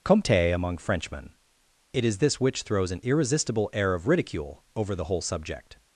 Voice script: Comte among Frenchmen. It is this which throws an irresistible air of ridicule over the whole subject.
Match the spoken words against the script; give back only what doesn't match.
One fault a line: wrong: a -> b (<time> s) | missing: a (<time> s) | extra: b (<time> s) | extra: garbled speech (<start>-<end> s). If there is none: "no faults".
no faults